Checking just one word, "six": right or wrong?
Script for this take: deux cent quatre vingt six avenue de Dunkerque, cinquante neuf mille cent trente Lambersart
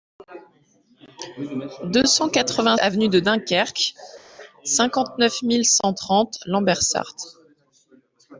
wrong